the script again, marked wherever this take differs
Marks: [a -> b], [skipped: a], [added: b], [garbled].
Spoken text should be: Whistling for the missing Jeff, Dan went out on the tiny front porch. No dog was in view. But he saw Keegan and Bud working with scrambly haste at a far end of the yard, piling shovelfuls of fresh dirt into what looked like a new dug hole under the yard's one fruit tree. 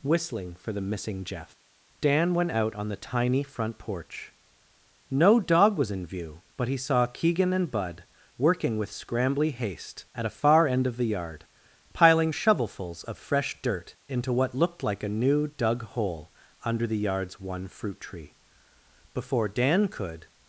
Whistling for the missing Jeff, Dan went out on the tiny front porch. No dog was in view. But he saw Keegan and Bud working with scrambly haste at a far end of the yard, piling shovelfuls of fresh dirt into what looked like a new dug hole under the yard's one fruit tree. [added: Before Dan could]